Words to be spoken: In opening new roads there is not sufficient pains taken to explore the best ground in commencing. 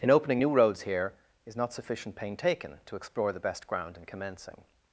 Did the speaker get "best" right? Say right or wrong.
right